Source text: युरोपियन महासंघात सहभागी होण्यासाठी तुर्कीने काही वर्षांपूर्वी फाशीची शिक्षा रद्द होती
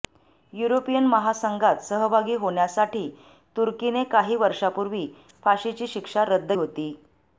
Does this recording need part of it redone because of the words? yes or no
no